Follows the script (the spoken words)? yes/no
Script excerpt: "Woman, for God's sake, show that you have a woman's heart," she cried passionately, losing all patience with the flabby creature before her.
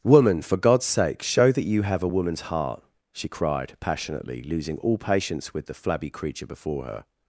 yes